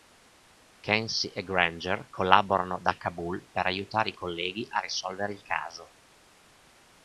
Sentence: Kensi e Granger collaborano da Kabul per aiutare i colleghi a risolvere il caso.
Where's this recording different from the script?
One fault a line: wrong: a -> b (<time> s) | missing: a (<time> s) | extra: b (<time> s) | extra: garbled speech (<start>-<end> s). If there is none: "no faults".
no faults